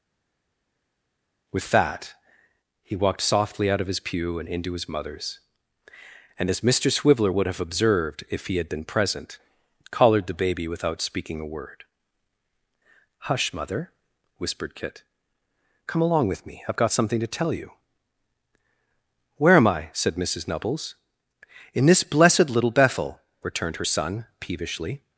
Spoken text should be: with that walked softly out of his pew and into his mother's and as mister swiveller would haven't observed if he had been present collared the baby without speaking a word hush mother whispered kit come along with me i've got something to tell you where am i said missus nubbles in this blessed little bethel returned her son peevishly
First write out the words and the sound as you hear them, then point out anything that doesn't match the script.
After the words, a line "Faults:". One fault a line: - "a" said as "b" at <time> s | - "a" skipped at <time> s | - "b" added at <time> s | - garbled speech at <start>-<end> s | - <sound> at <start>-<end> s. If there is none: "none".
with that he walked softly out of his pew and into his mother's and as mister swiveller would have observed if he had been present collared the baby without speaking a word hush mother whispered kit come along with me i've got something to tell you where am i said missus nubbles in this blessed little bethel returned her son peevishly
Faults:
- "he" added at 2.8 s
- "haven't" said as "have" at 7.5 s